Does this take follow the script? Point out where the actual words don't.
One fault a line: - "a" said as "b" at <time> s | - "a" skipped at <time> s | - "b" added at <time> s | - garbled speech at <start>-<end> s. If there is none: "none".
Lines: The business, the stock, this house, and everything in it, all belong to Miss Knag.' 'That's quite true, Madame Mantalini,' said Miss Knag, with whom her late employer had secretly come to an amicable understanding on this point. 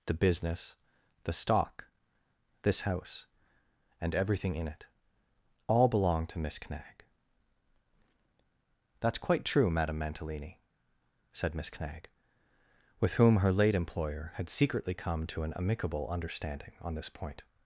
none